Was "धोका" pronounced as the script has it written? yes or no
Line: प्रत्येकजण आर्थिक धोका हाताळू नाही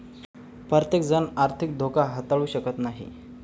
yes